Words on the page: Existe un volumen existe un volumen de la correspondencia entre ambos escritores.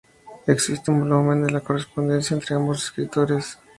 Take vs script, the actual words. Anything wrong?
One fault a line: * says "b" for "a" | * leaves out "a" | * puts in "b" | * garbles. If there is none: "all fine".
* leaves out "existe un volumen"